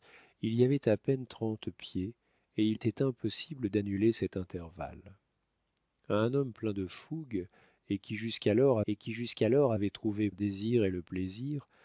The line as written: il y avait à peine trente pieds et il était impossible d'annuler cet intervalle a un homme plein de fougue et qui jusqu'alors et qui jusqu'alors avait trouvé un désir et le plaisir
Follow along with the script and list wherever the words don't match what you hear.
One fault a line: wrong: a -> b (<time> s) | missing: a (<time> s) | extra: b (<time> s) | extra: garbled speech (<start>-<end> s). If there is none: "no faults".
no faults